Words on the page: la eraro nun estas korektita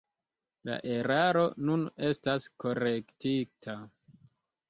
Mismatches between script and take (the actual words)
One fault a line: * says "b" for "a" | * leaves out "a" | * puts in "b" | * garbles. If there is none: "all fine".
all fine